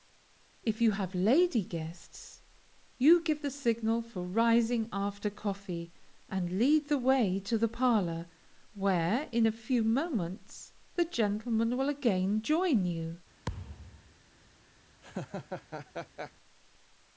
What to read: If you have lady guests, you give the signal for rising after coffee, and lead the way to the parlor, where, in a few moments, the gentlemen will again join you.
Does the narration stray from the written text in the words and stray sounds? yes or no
yes